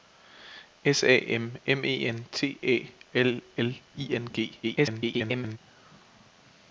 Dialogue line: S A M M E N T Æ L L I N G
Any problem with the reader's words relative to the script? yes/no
yes